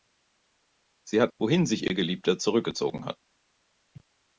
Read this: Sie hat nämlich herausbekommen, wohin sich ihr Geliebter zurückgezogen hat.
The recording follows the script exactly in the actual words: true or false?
false